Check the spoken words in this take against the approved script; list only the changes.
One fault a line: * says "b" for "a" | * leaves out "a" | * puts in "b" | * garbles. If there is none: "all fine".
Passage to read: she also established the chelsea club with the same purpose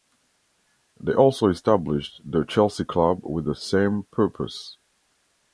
* says "they" for "she"